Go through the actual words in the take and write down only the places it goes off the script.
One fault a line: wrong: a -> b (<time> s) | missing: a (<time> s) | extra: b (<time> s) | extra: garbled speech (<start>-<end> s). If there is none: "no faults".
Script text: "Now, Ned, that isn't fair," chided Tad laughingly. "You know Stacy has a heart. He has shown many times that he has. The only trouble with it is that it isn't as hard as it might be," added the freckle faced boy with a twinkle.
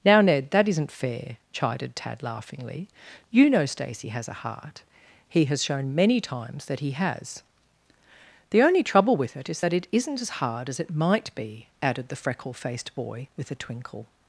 no faults